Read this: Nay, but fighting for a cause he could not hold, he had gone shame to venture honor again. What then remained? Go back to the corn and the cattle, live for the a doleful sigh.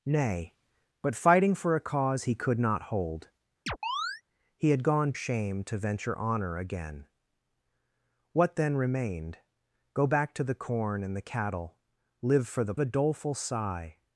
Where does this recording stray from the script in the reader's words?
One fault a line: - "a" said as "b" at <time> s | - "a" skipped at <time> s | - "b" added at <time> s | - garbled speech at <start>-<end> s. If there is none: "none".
none